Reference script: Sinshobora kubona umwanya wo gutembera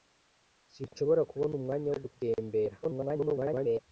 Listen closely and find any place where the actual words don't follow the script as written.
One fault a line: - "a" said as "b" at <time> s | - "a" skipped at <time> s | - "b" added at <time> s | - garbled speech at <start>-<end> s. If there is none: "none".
- garbled speech at 2.8-3.8 s